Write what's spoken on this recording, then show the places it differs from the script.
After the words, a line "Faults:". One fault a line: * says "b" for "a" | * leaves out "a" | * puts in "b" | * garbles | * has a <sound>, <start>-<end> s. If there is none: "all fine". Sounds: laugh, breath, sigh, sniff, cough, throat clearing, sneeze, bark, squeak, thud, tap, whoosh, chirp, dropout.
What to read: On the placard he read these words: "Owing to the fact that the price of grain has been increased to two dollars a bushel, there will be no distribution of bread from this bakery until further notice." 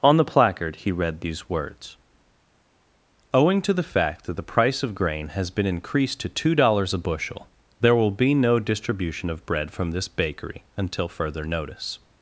On the placard he read these words: "Owing to the fact that the price of grain has been increased to two dollars a bushel, there will be no distribution of bread from this bakery until further notice."
Faults:
all fine